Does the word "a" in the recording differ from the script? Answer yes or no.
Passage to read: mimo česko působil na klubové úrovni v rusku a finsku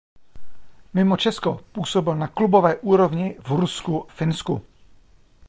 yes